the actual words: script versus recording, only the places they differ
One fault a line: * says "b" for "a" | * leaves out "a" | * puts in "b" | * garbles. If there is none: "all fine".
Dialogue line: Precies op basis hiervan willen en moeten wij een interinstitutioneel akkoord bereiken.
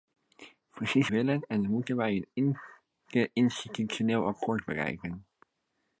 * leaves out "op basis hiervan"